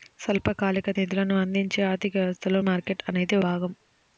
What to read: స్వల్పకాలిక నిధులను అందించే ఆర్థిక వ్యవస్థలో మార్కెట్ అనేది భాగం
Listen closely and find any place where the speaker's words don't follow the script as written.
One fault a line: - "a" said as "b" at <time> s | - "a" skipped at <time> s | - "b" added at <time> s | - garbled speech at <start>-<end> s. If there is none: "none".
none